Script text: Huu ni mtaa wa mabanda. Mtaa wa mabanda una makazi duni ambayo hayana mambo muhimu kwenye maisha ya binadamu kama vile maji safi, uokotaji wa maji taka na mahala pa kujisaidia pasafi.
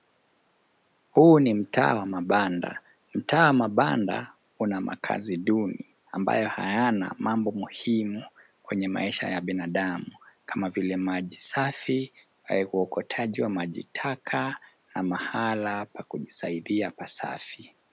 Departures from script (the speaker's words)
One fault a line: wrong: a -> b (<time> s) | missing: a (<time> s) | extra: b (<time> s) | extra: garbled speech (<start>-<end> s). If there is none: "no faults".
no faults